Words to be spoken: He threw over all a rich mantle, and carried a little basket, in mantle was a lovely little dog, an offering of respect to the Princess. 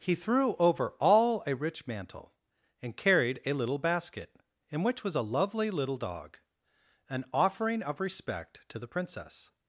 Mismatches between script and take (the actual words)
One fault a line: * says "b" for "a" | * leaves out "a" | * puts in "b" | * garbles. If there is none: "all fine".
* says "which" for "mantle"